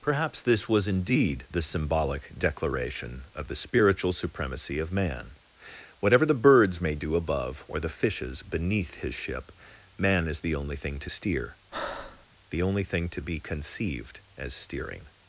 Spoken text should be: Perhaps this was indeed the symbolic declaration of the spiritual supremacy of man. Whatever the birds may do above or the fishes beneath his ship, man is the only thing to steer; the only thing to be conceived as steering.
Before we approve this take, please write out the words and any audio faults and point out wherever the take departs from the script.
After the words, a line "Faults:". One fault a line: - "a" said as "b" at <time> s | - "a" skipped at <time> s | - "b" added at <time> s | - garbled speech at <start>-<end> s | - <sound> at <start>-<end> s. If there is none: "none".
Perhaps this was indeed the symbolic declaration of the spiritual supremacy of man. Whatever the birds may do above or the fishes beneath his ship, man is the only thing to steer; the only thing to be conceived as steering.
Faults:
- breath at 11.7-12.3 s